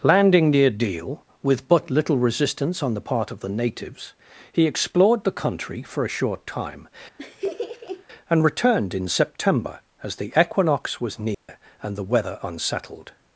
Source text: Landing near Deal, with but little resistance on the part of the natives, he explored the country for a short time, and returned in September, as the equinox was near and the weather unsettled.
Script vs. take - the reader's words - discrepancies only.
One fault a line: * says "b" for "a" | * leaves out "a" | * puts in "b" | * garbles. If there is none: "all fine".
all fine